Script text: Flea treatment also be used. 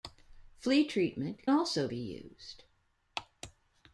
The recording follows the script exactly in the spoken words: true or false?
true